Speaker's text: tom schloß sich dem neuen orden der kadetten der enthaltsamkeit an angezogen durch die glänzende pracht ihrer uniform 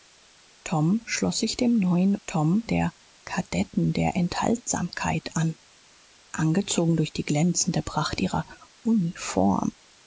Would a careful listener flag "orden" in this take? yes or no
yes